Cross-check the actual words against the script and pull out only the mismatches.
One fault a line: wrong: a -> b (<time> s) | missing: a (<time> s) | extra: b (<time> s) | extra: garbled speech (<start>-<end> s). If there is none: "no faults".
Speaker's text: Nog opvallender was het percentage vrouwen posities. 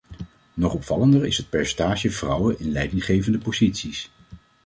wrong: was -> is (1.3 s)
extra: in leidinggevende (2.6 s)